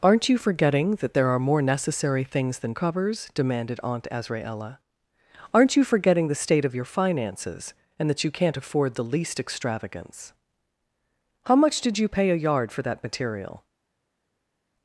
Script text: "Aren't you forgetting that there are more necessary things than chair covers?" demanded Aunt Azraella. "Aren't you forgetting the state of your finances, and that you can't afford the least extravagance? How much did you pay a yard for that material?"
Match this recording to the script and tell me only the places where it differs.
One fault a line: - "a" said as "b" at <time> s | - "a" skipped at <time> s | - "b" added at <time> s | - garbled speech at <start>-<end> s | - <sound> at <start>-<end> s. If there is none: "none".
- "chair" skipped at 2.7 s